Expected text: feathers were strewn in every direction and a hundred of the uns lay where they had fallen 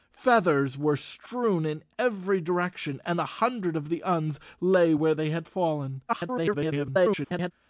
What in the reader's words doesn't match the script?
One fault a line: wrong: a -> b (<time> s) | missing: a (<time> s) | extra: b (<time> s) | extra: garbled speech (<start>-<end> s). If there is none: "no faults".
extra: garbled speech (6.1-7.5 s)